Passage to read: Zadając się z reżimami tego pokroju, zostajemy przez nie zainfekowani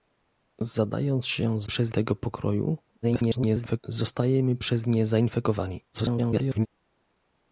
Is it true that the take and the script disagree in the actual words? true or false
true